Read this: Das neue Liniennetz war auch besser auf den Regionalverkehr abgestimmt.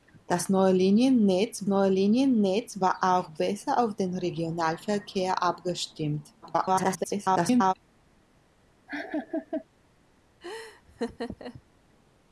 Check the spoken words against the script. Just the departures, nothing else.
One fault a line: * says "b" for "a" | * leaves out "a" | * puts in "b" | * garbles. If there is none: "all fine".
* puts in "neue Liniennetz"
* garbles